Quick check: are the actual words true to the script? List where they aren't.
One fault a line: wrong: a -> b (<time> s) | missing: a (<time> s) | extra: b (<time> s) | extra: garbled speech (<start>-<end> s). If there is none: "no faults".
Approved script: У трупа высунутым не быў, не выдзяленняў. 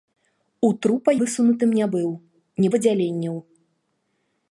no faults